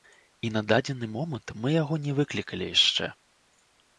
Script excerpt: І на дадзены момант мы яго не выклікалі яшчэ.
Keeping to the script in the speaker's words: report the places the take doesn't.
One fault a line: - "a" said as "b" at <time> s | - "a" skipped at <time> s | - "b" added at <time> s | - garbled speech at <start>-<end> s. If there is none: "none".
none